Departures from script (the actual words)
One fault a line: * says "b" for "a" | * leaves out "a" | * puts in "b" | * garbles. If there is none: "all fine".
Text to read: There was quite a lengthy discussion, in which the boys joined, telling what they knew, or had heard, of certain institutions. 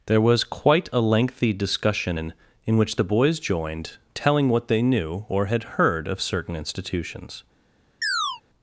* puts in "in"